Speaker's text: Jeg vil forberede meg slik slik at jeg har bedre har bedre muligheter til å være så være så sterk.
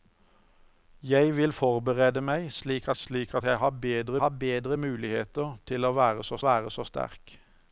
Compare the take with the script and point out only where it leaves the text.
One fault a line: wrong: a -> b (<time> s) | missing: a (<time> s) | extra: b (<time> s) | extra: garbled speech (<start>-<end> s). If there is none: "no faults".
no faults